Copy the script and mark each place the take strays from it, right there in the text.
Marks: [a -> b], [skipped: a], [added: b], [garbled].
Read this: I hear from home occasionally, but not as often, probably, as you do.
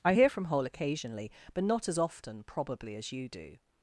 I hear from [home -> hole] occasionally, but not as often, probably, as you do.